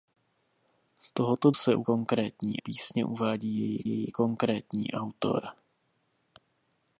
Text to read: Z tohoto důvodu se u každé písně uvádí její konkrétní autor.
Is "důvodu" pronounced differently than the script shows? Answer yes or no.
yes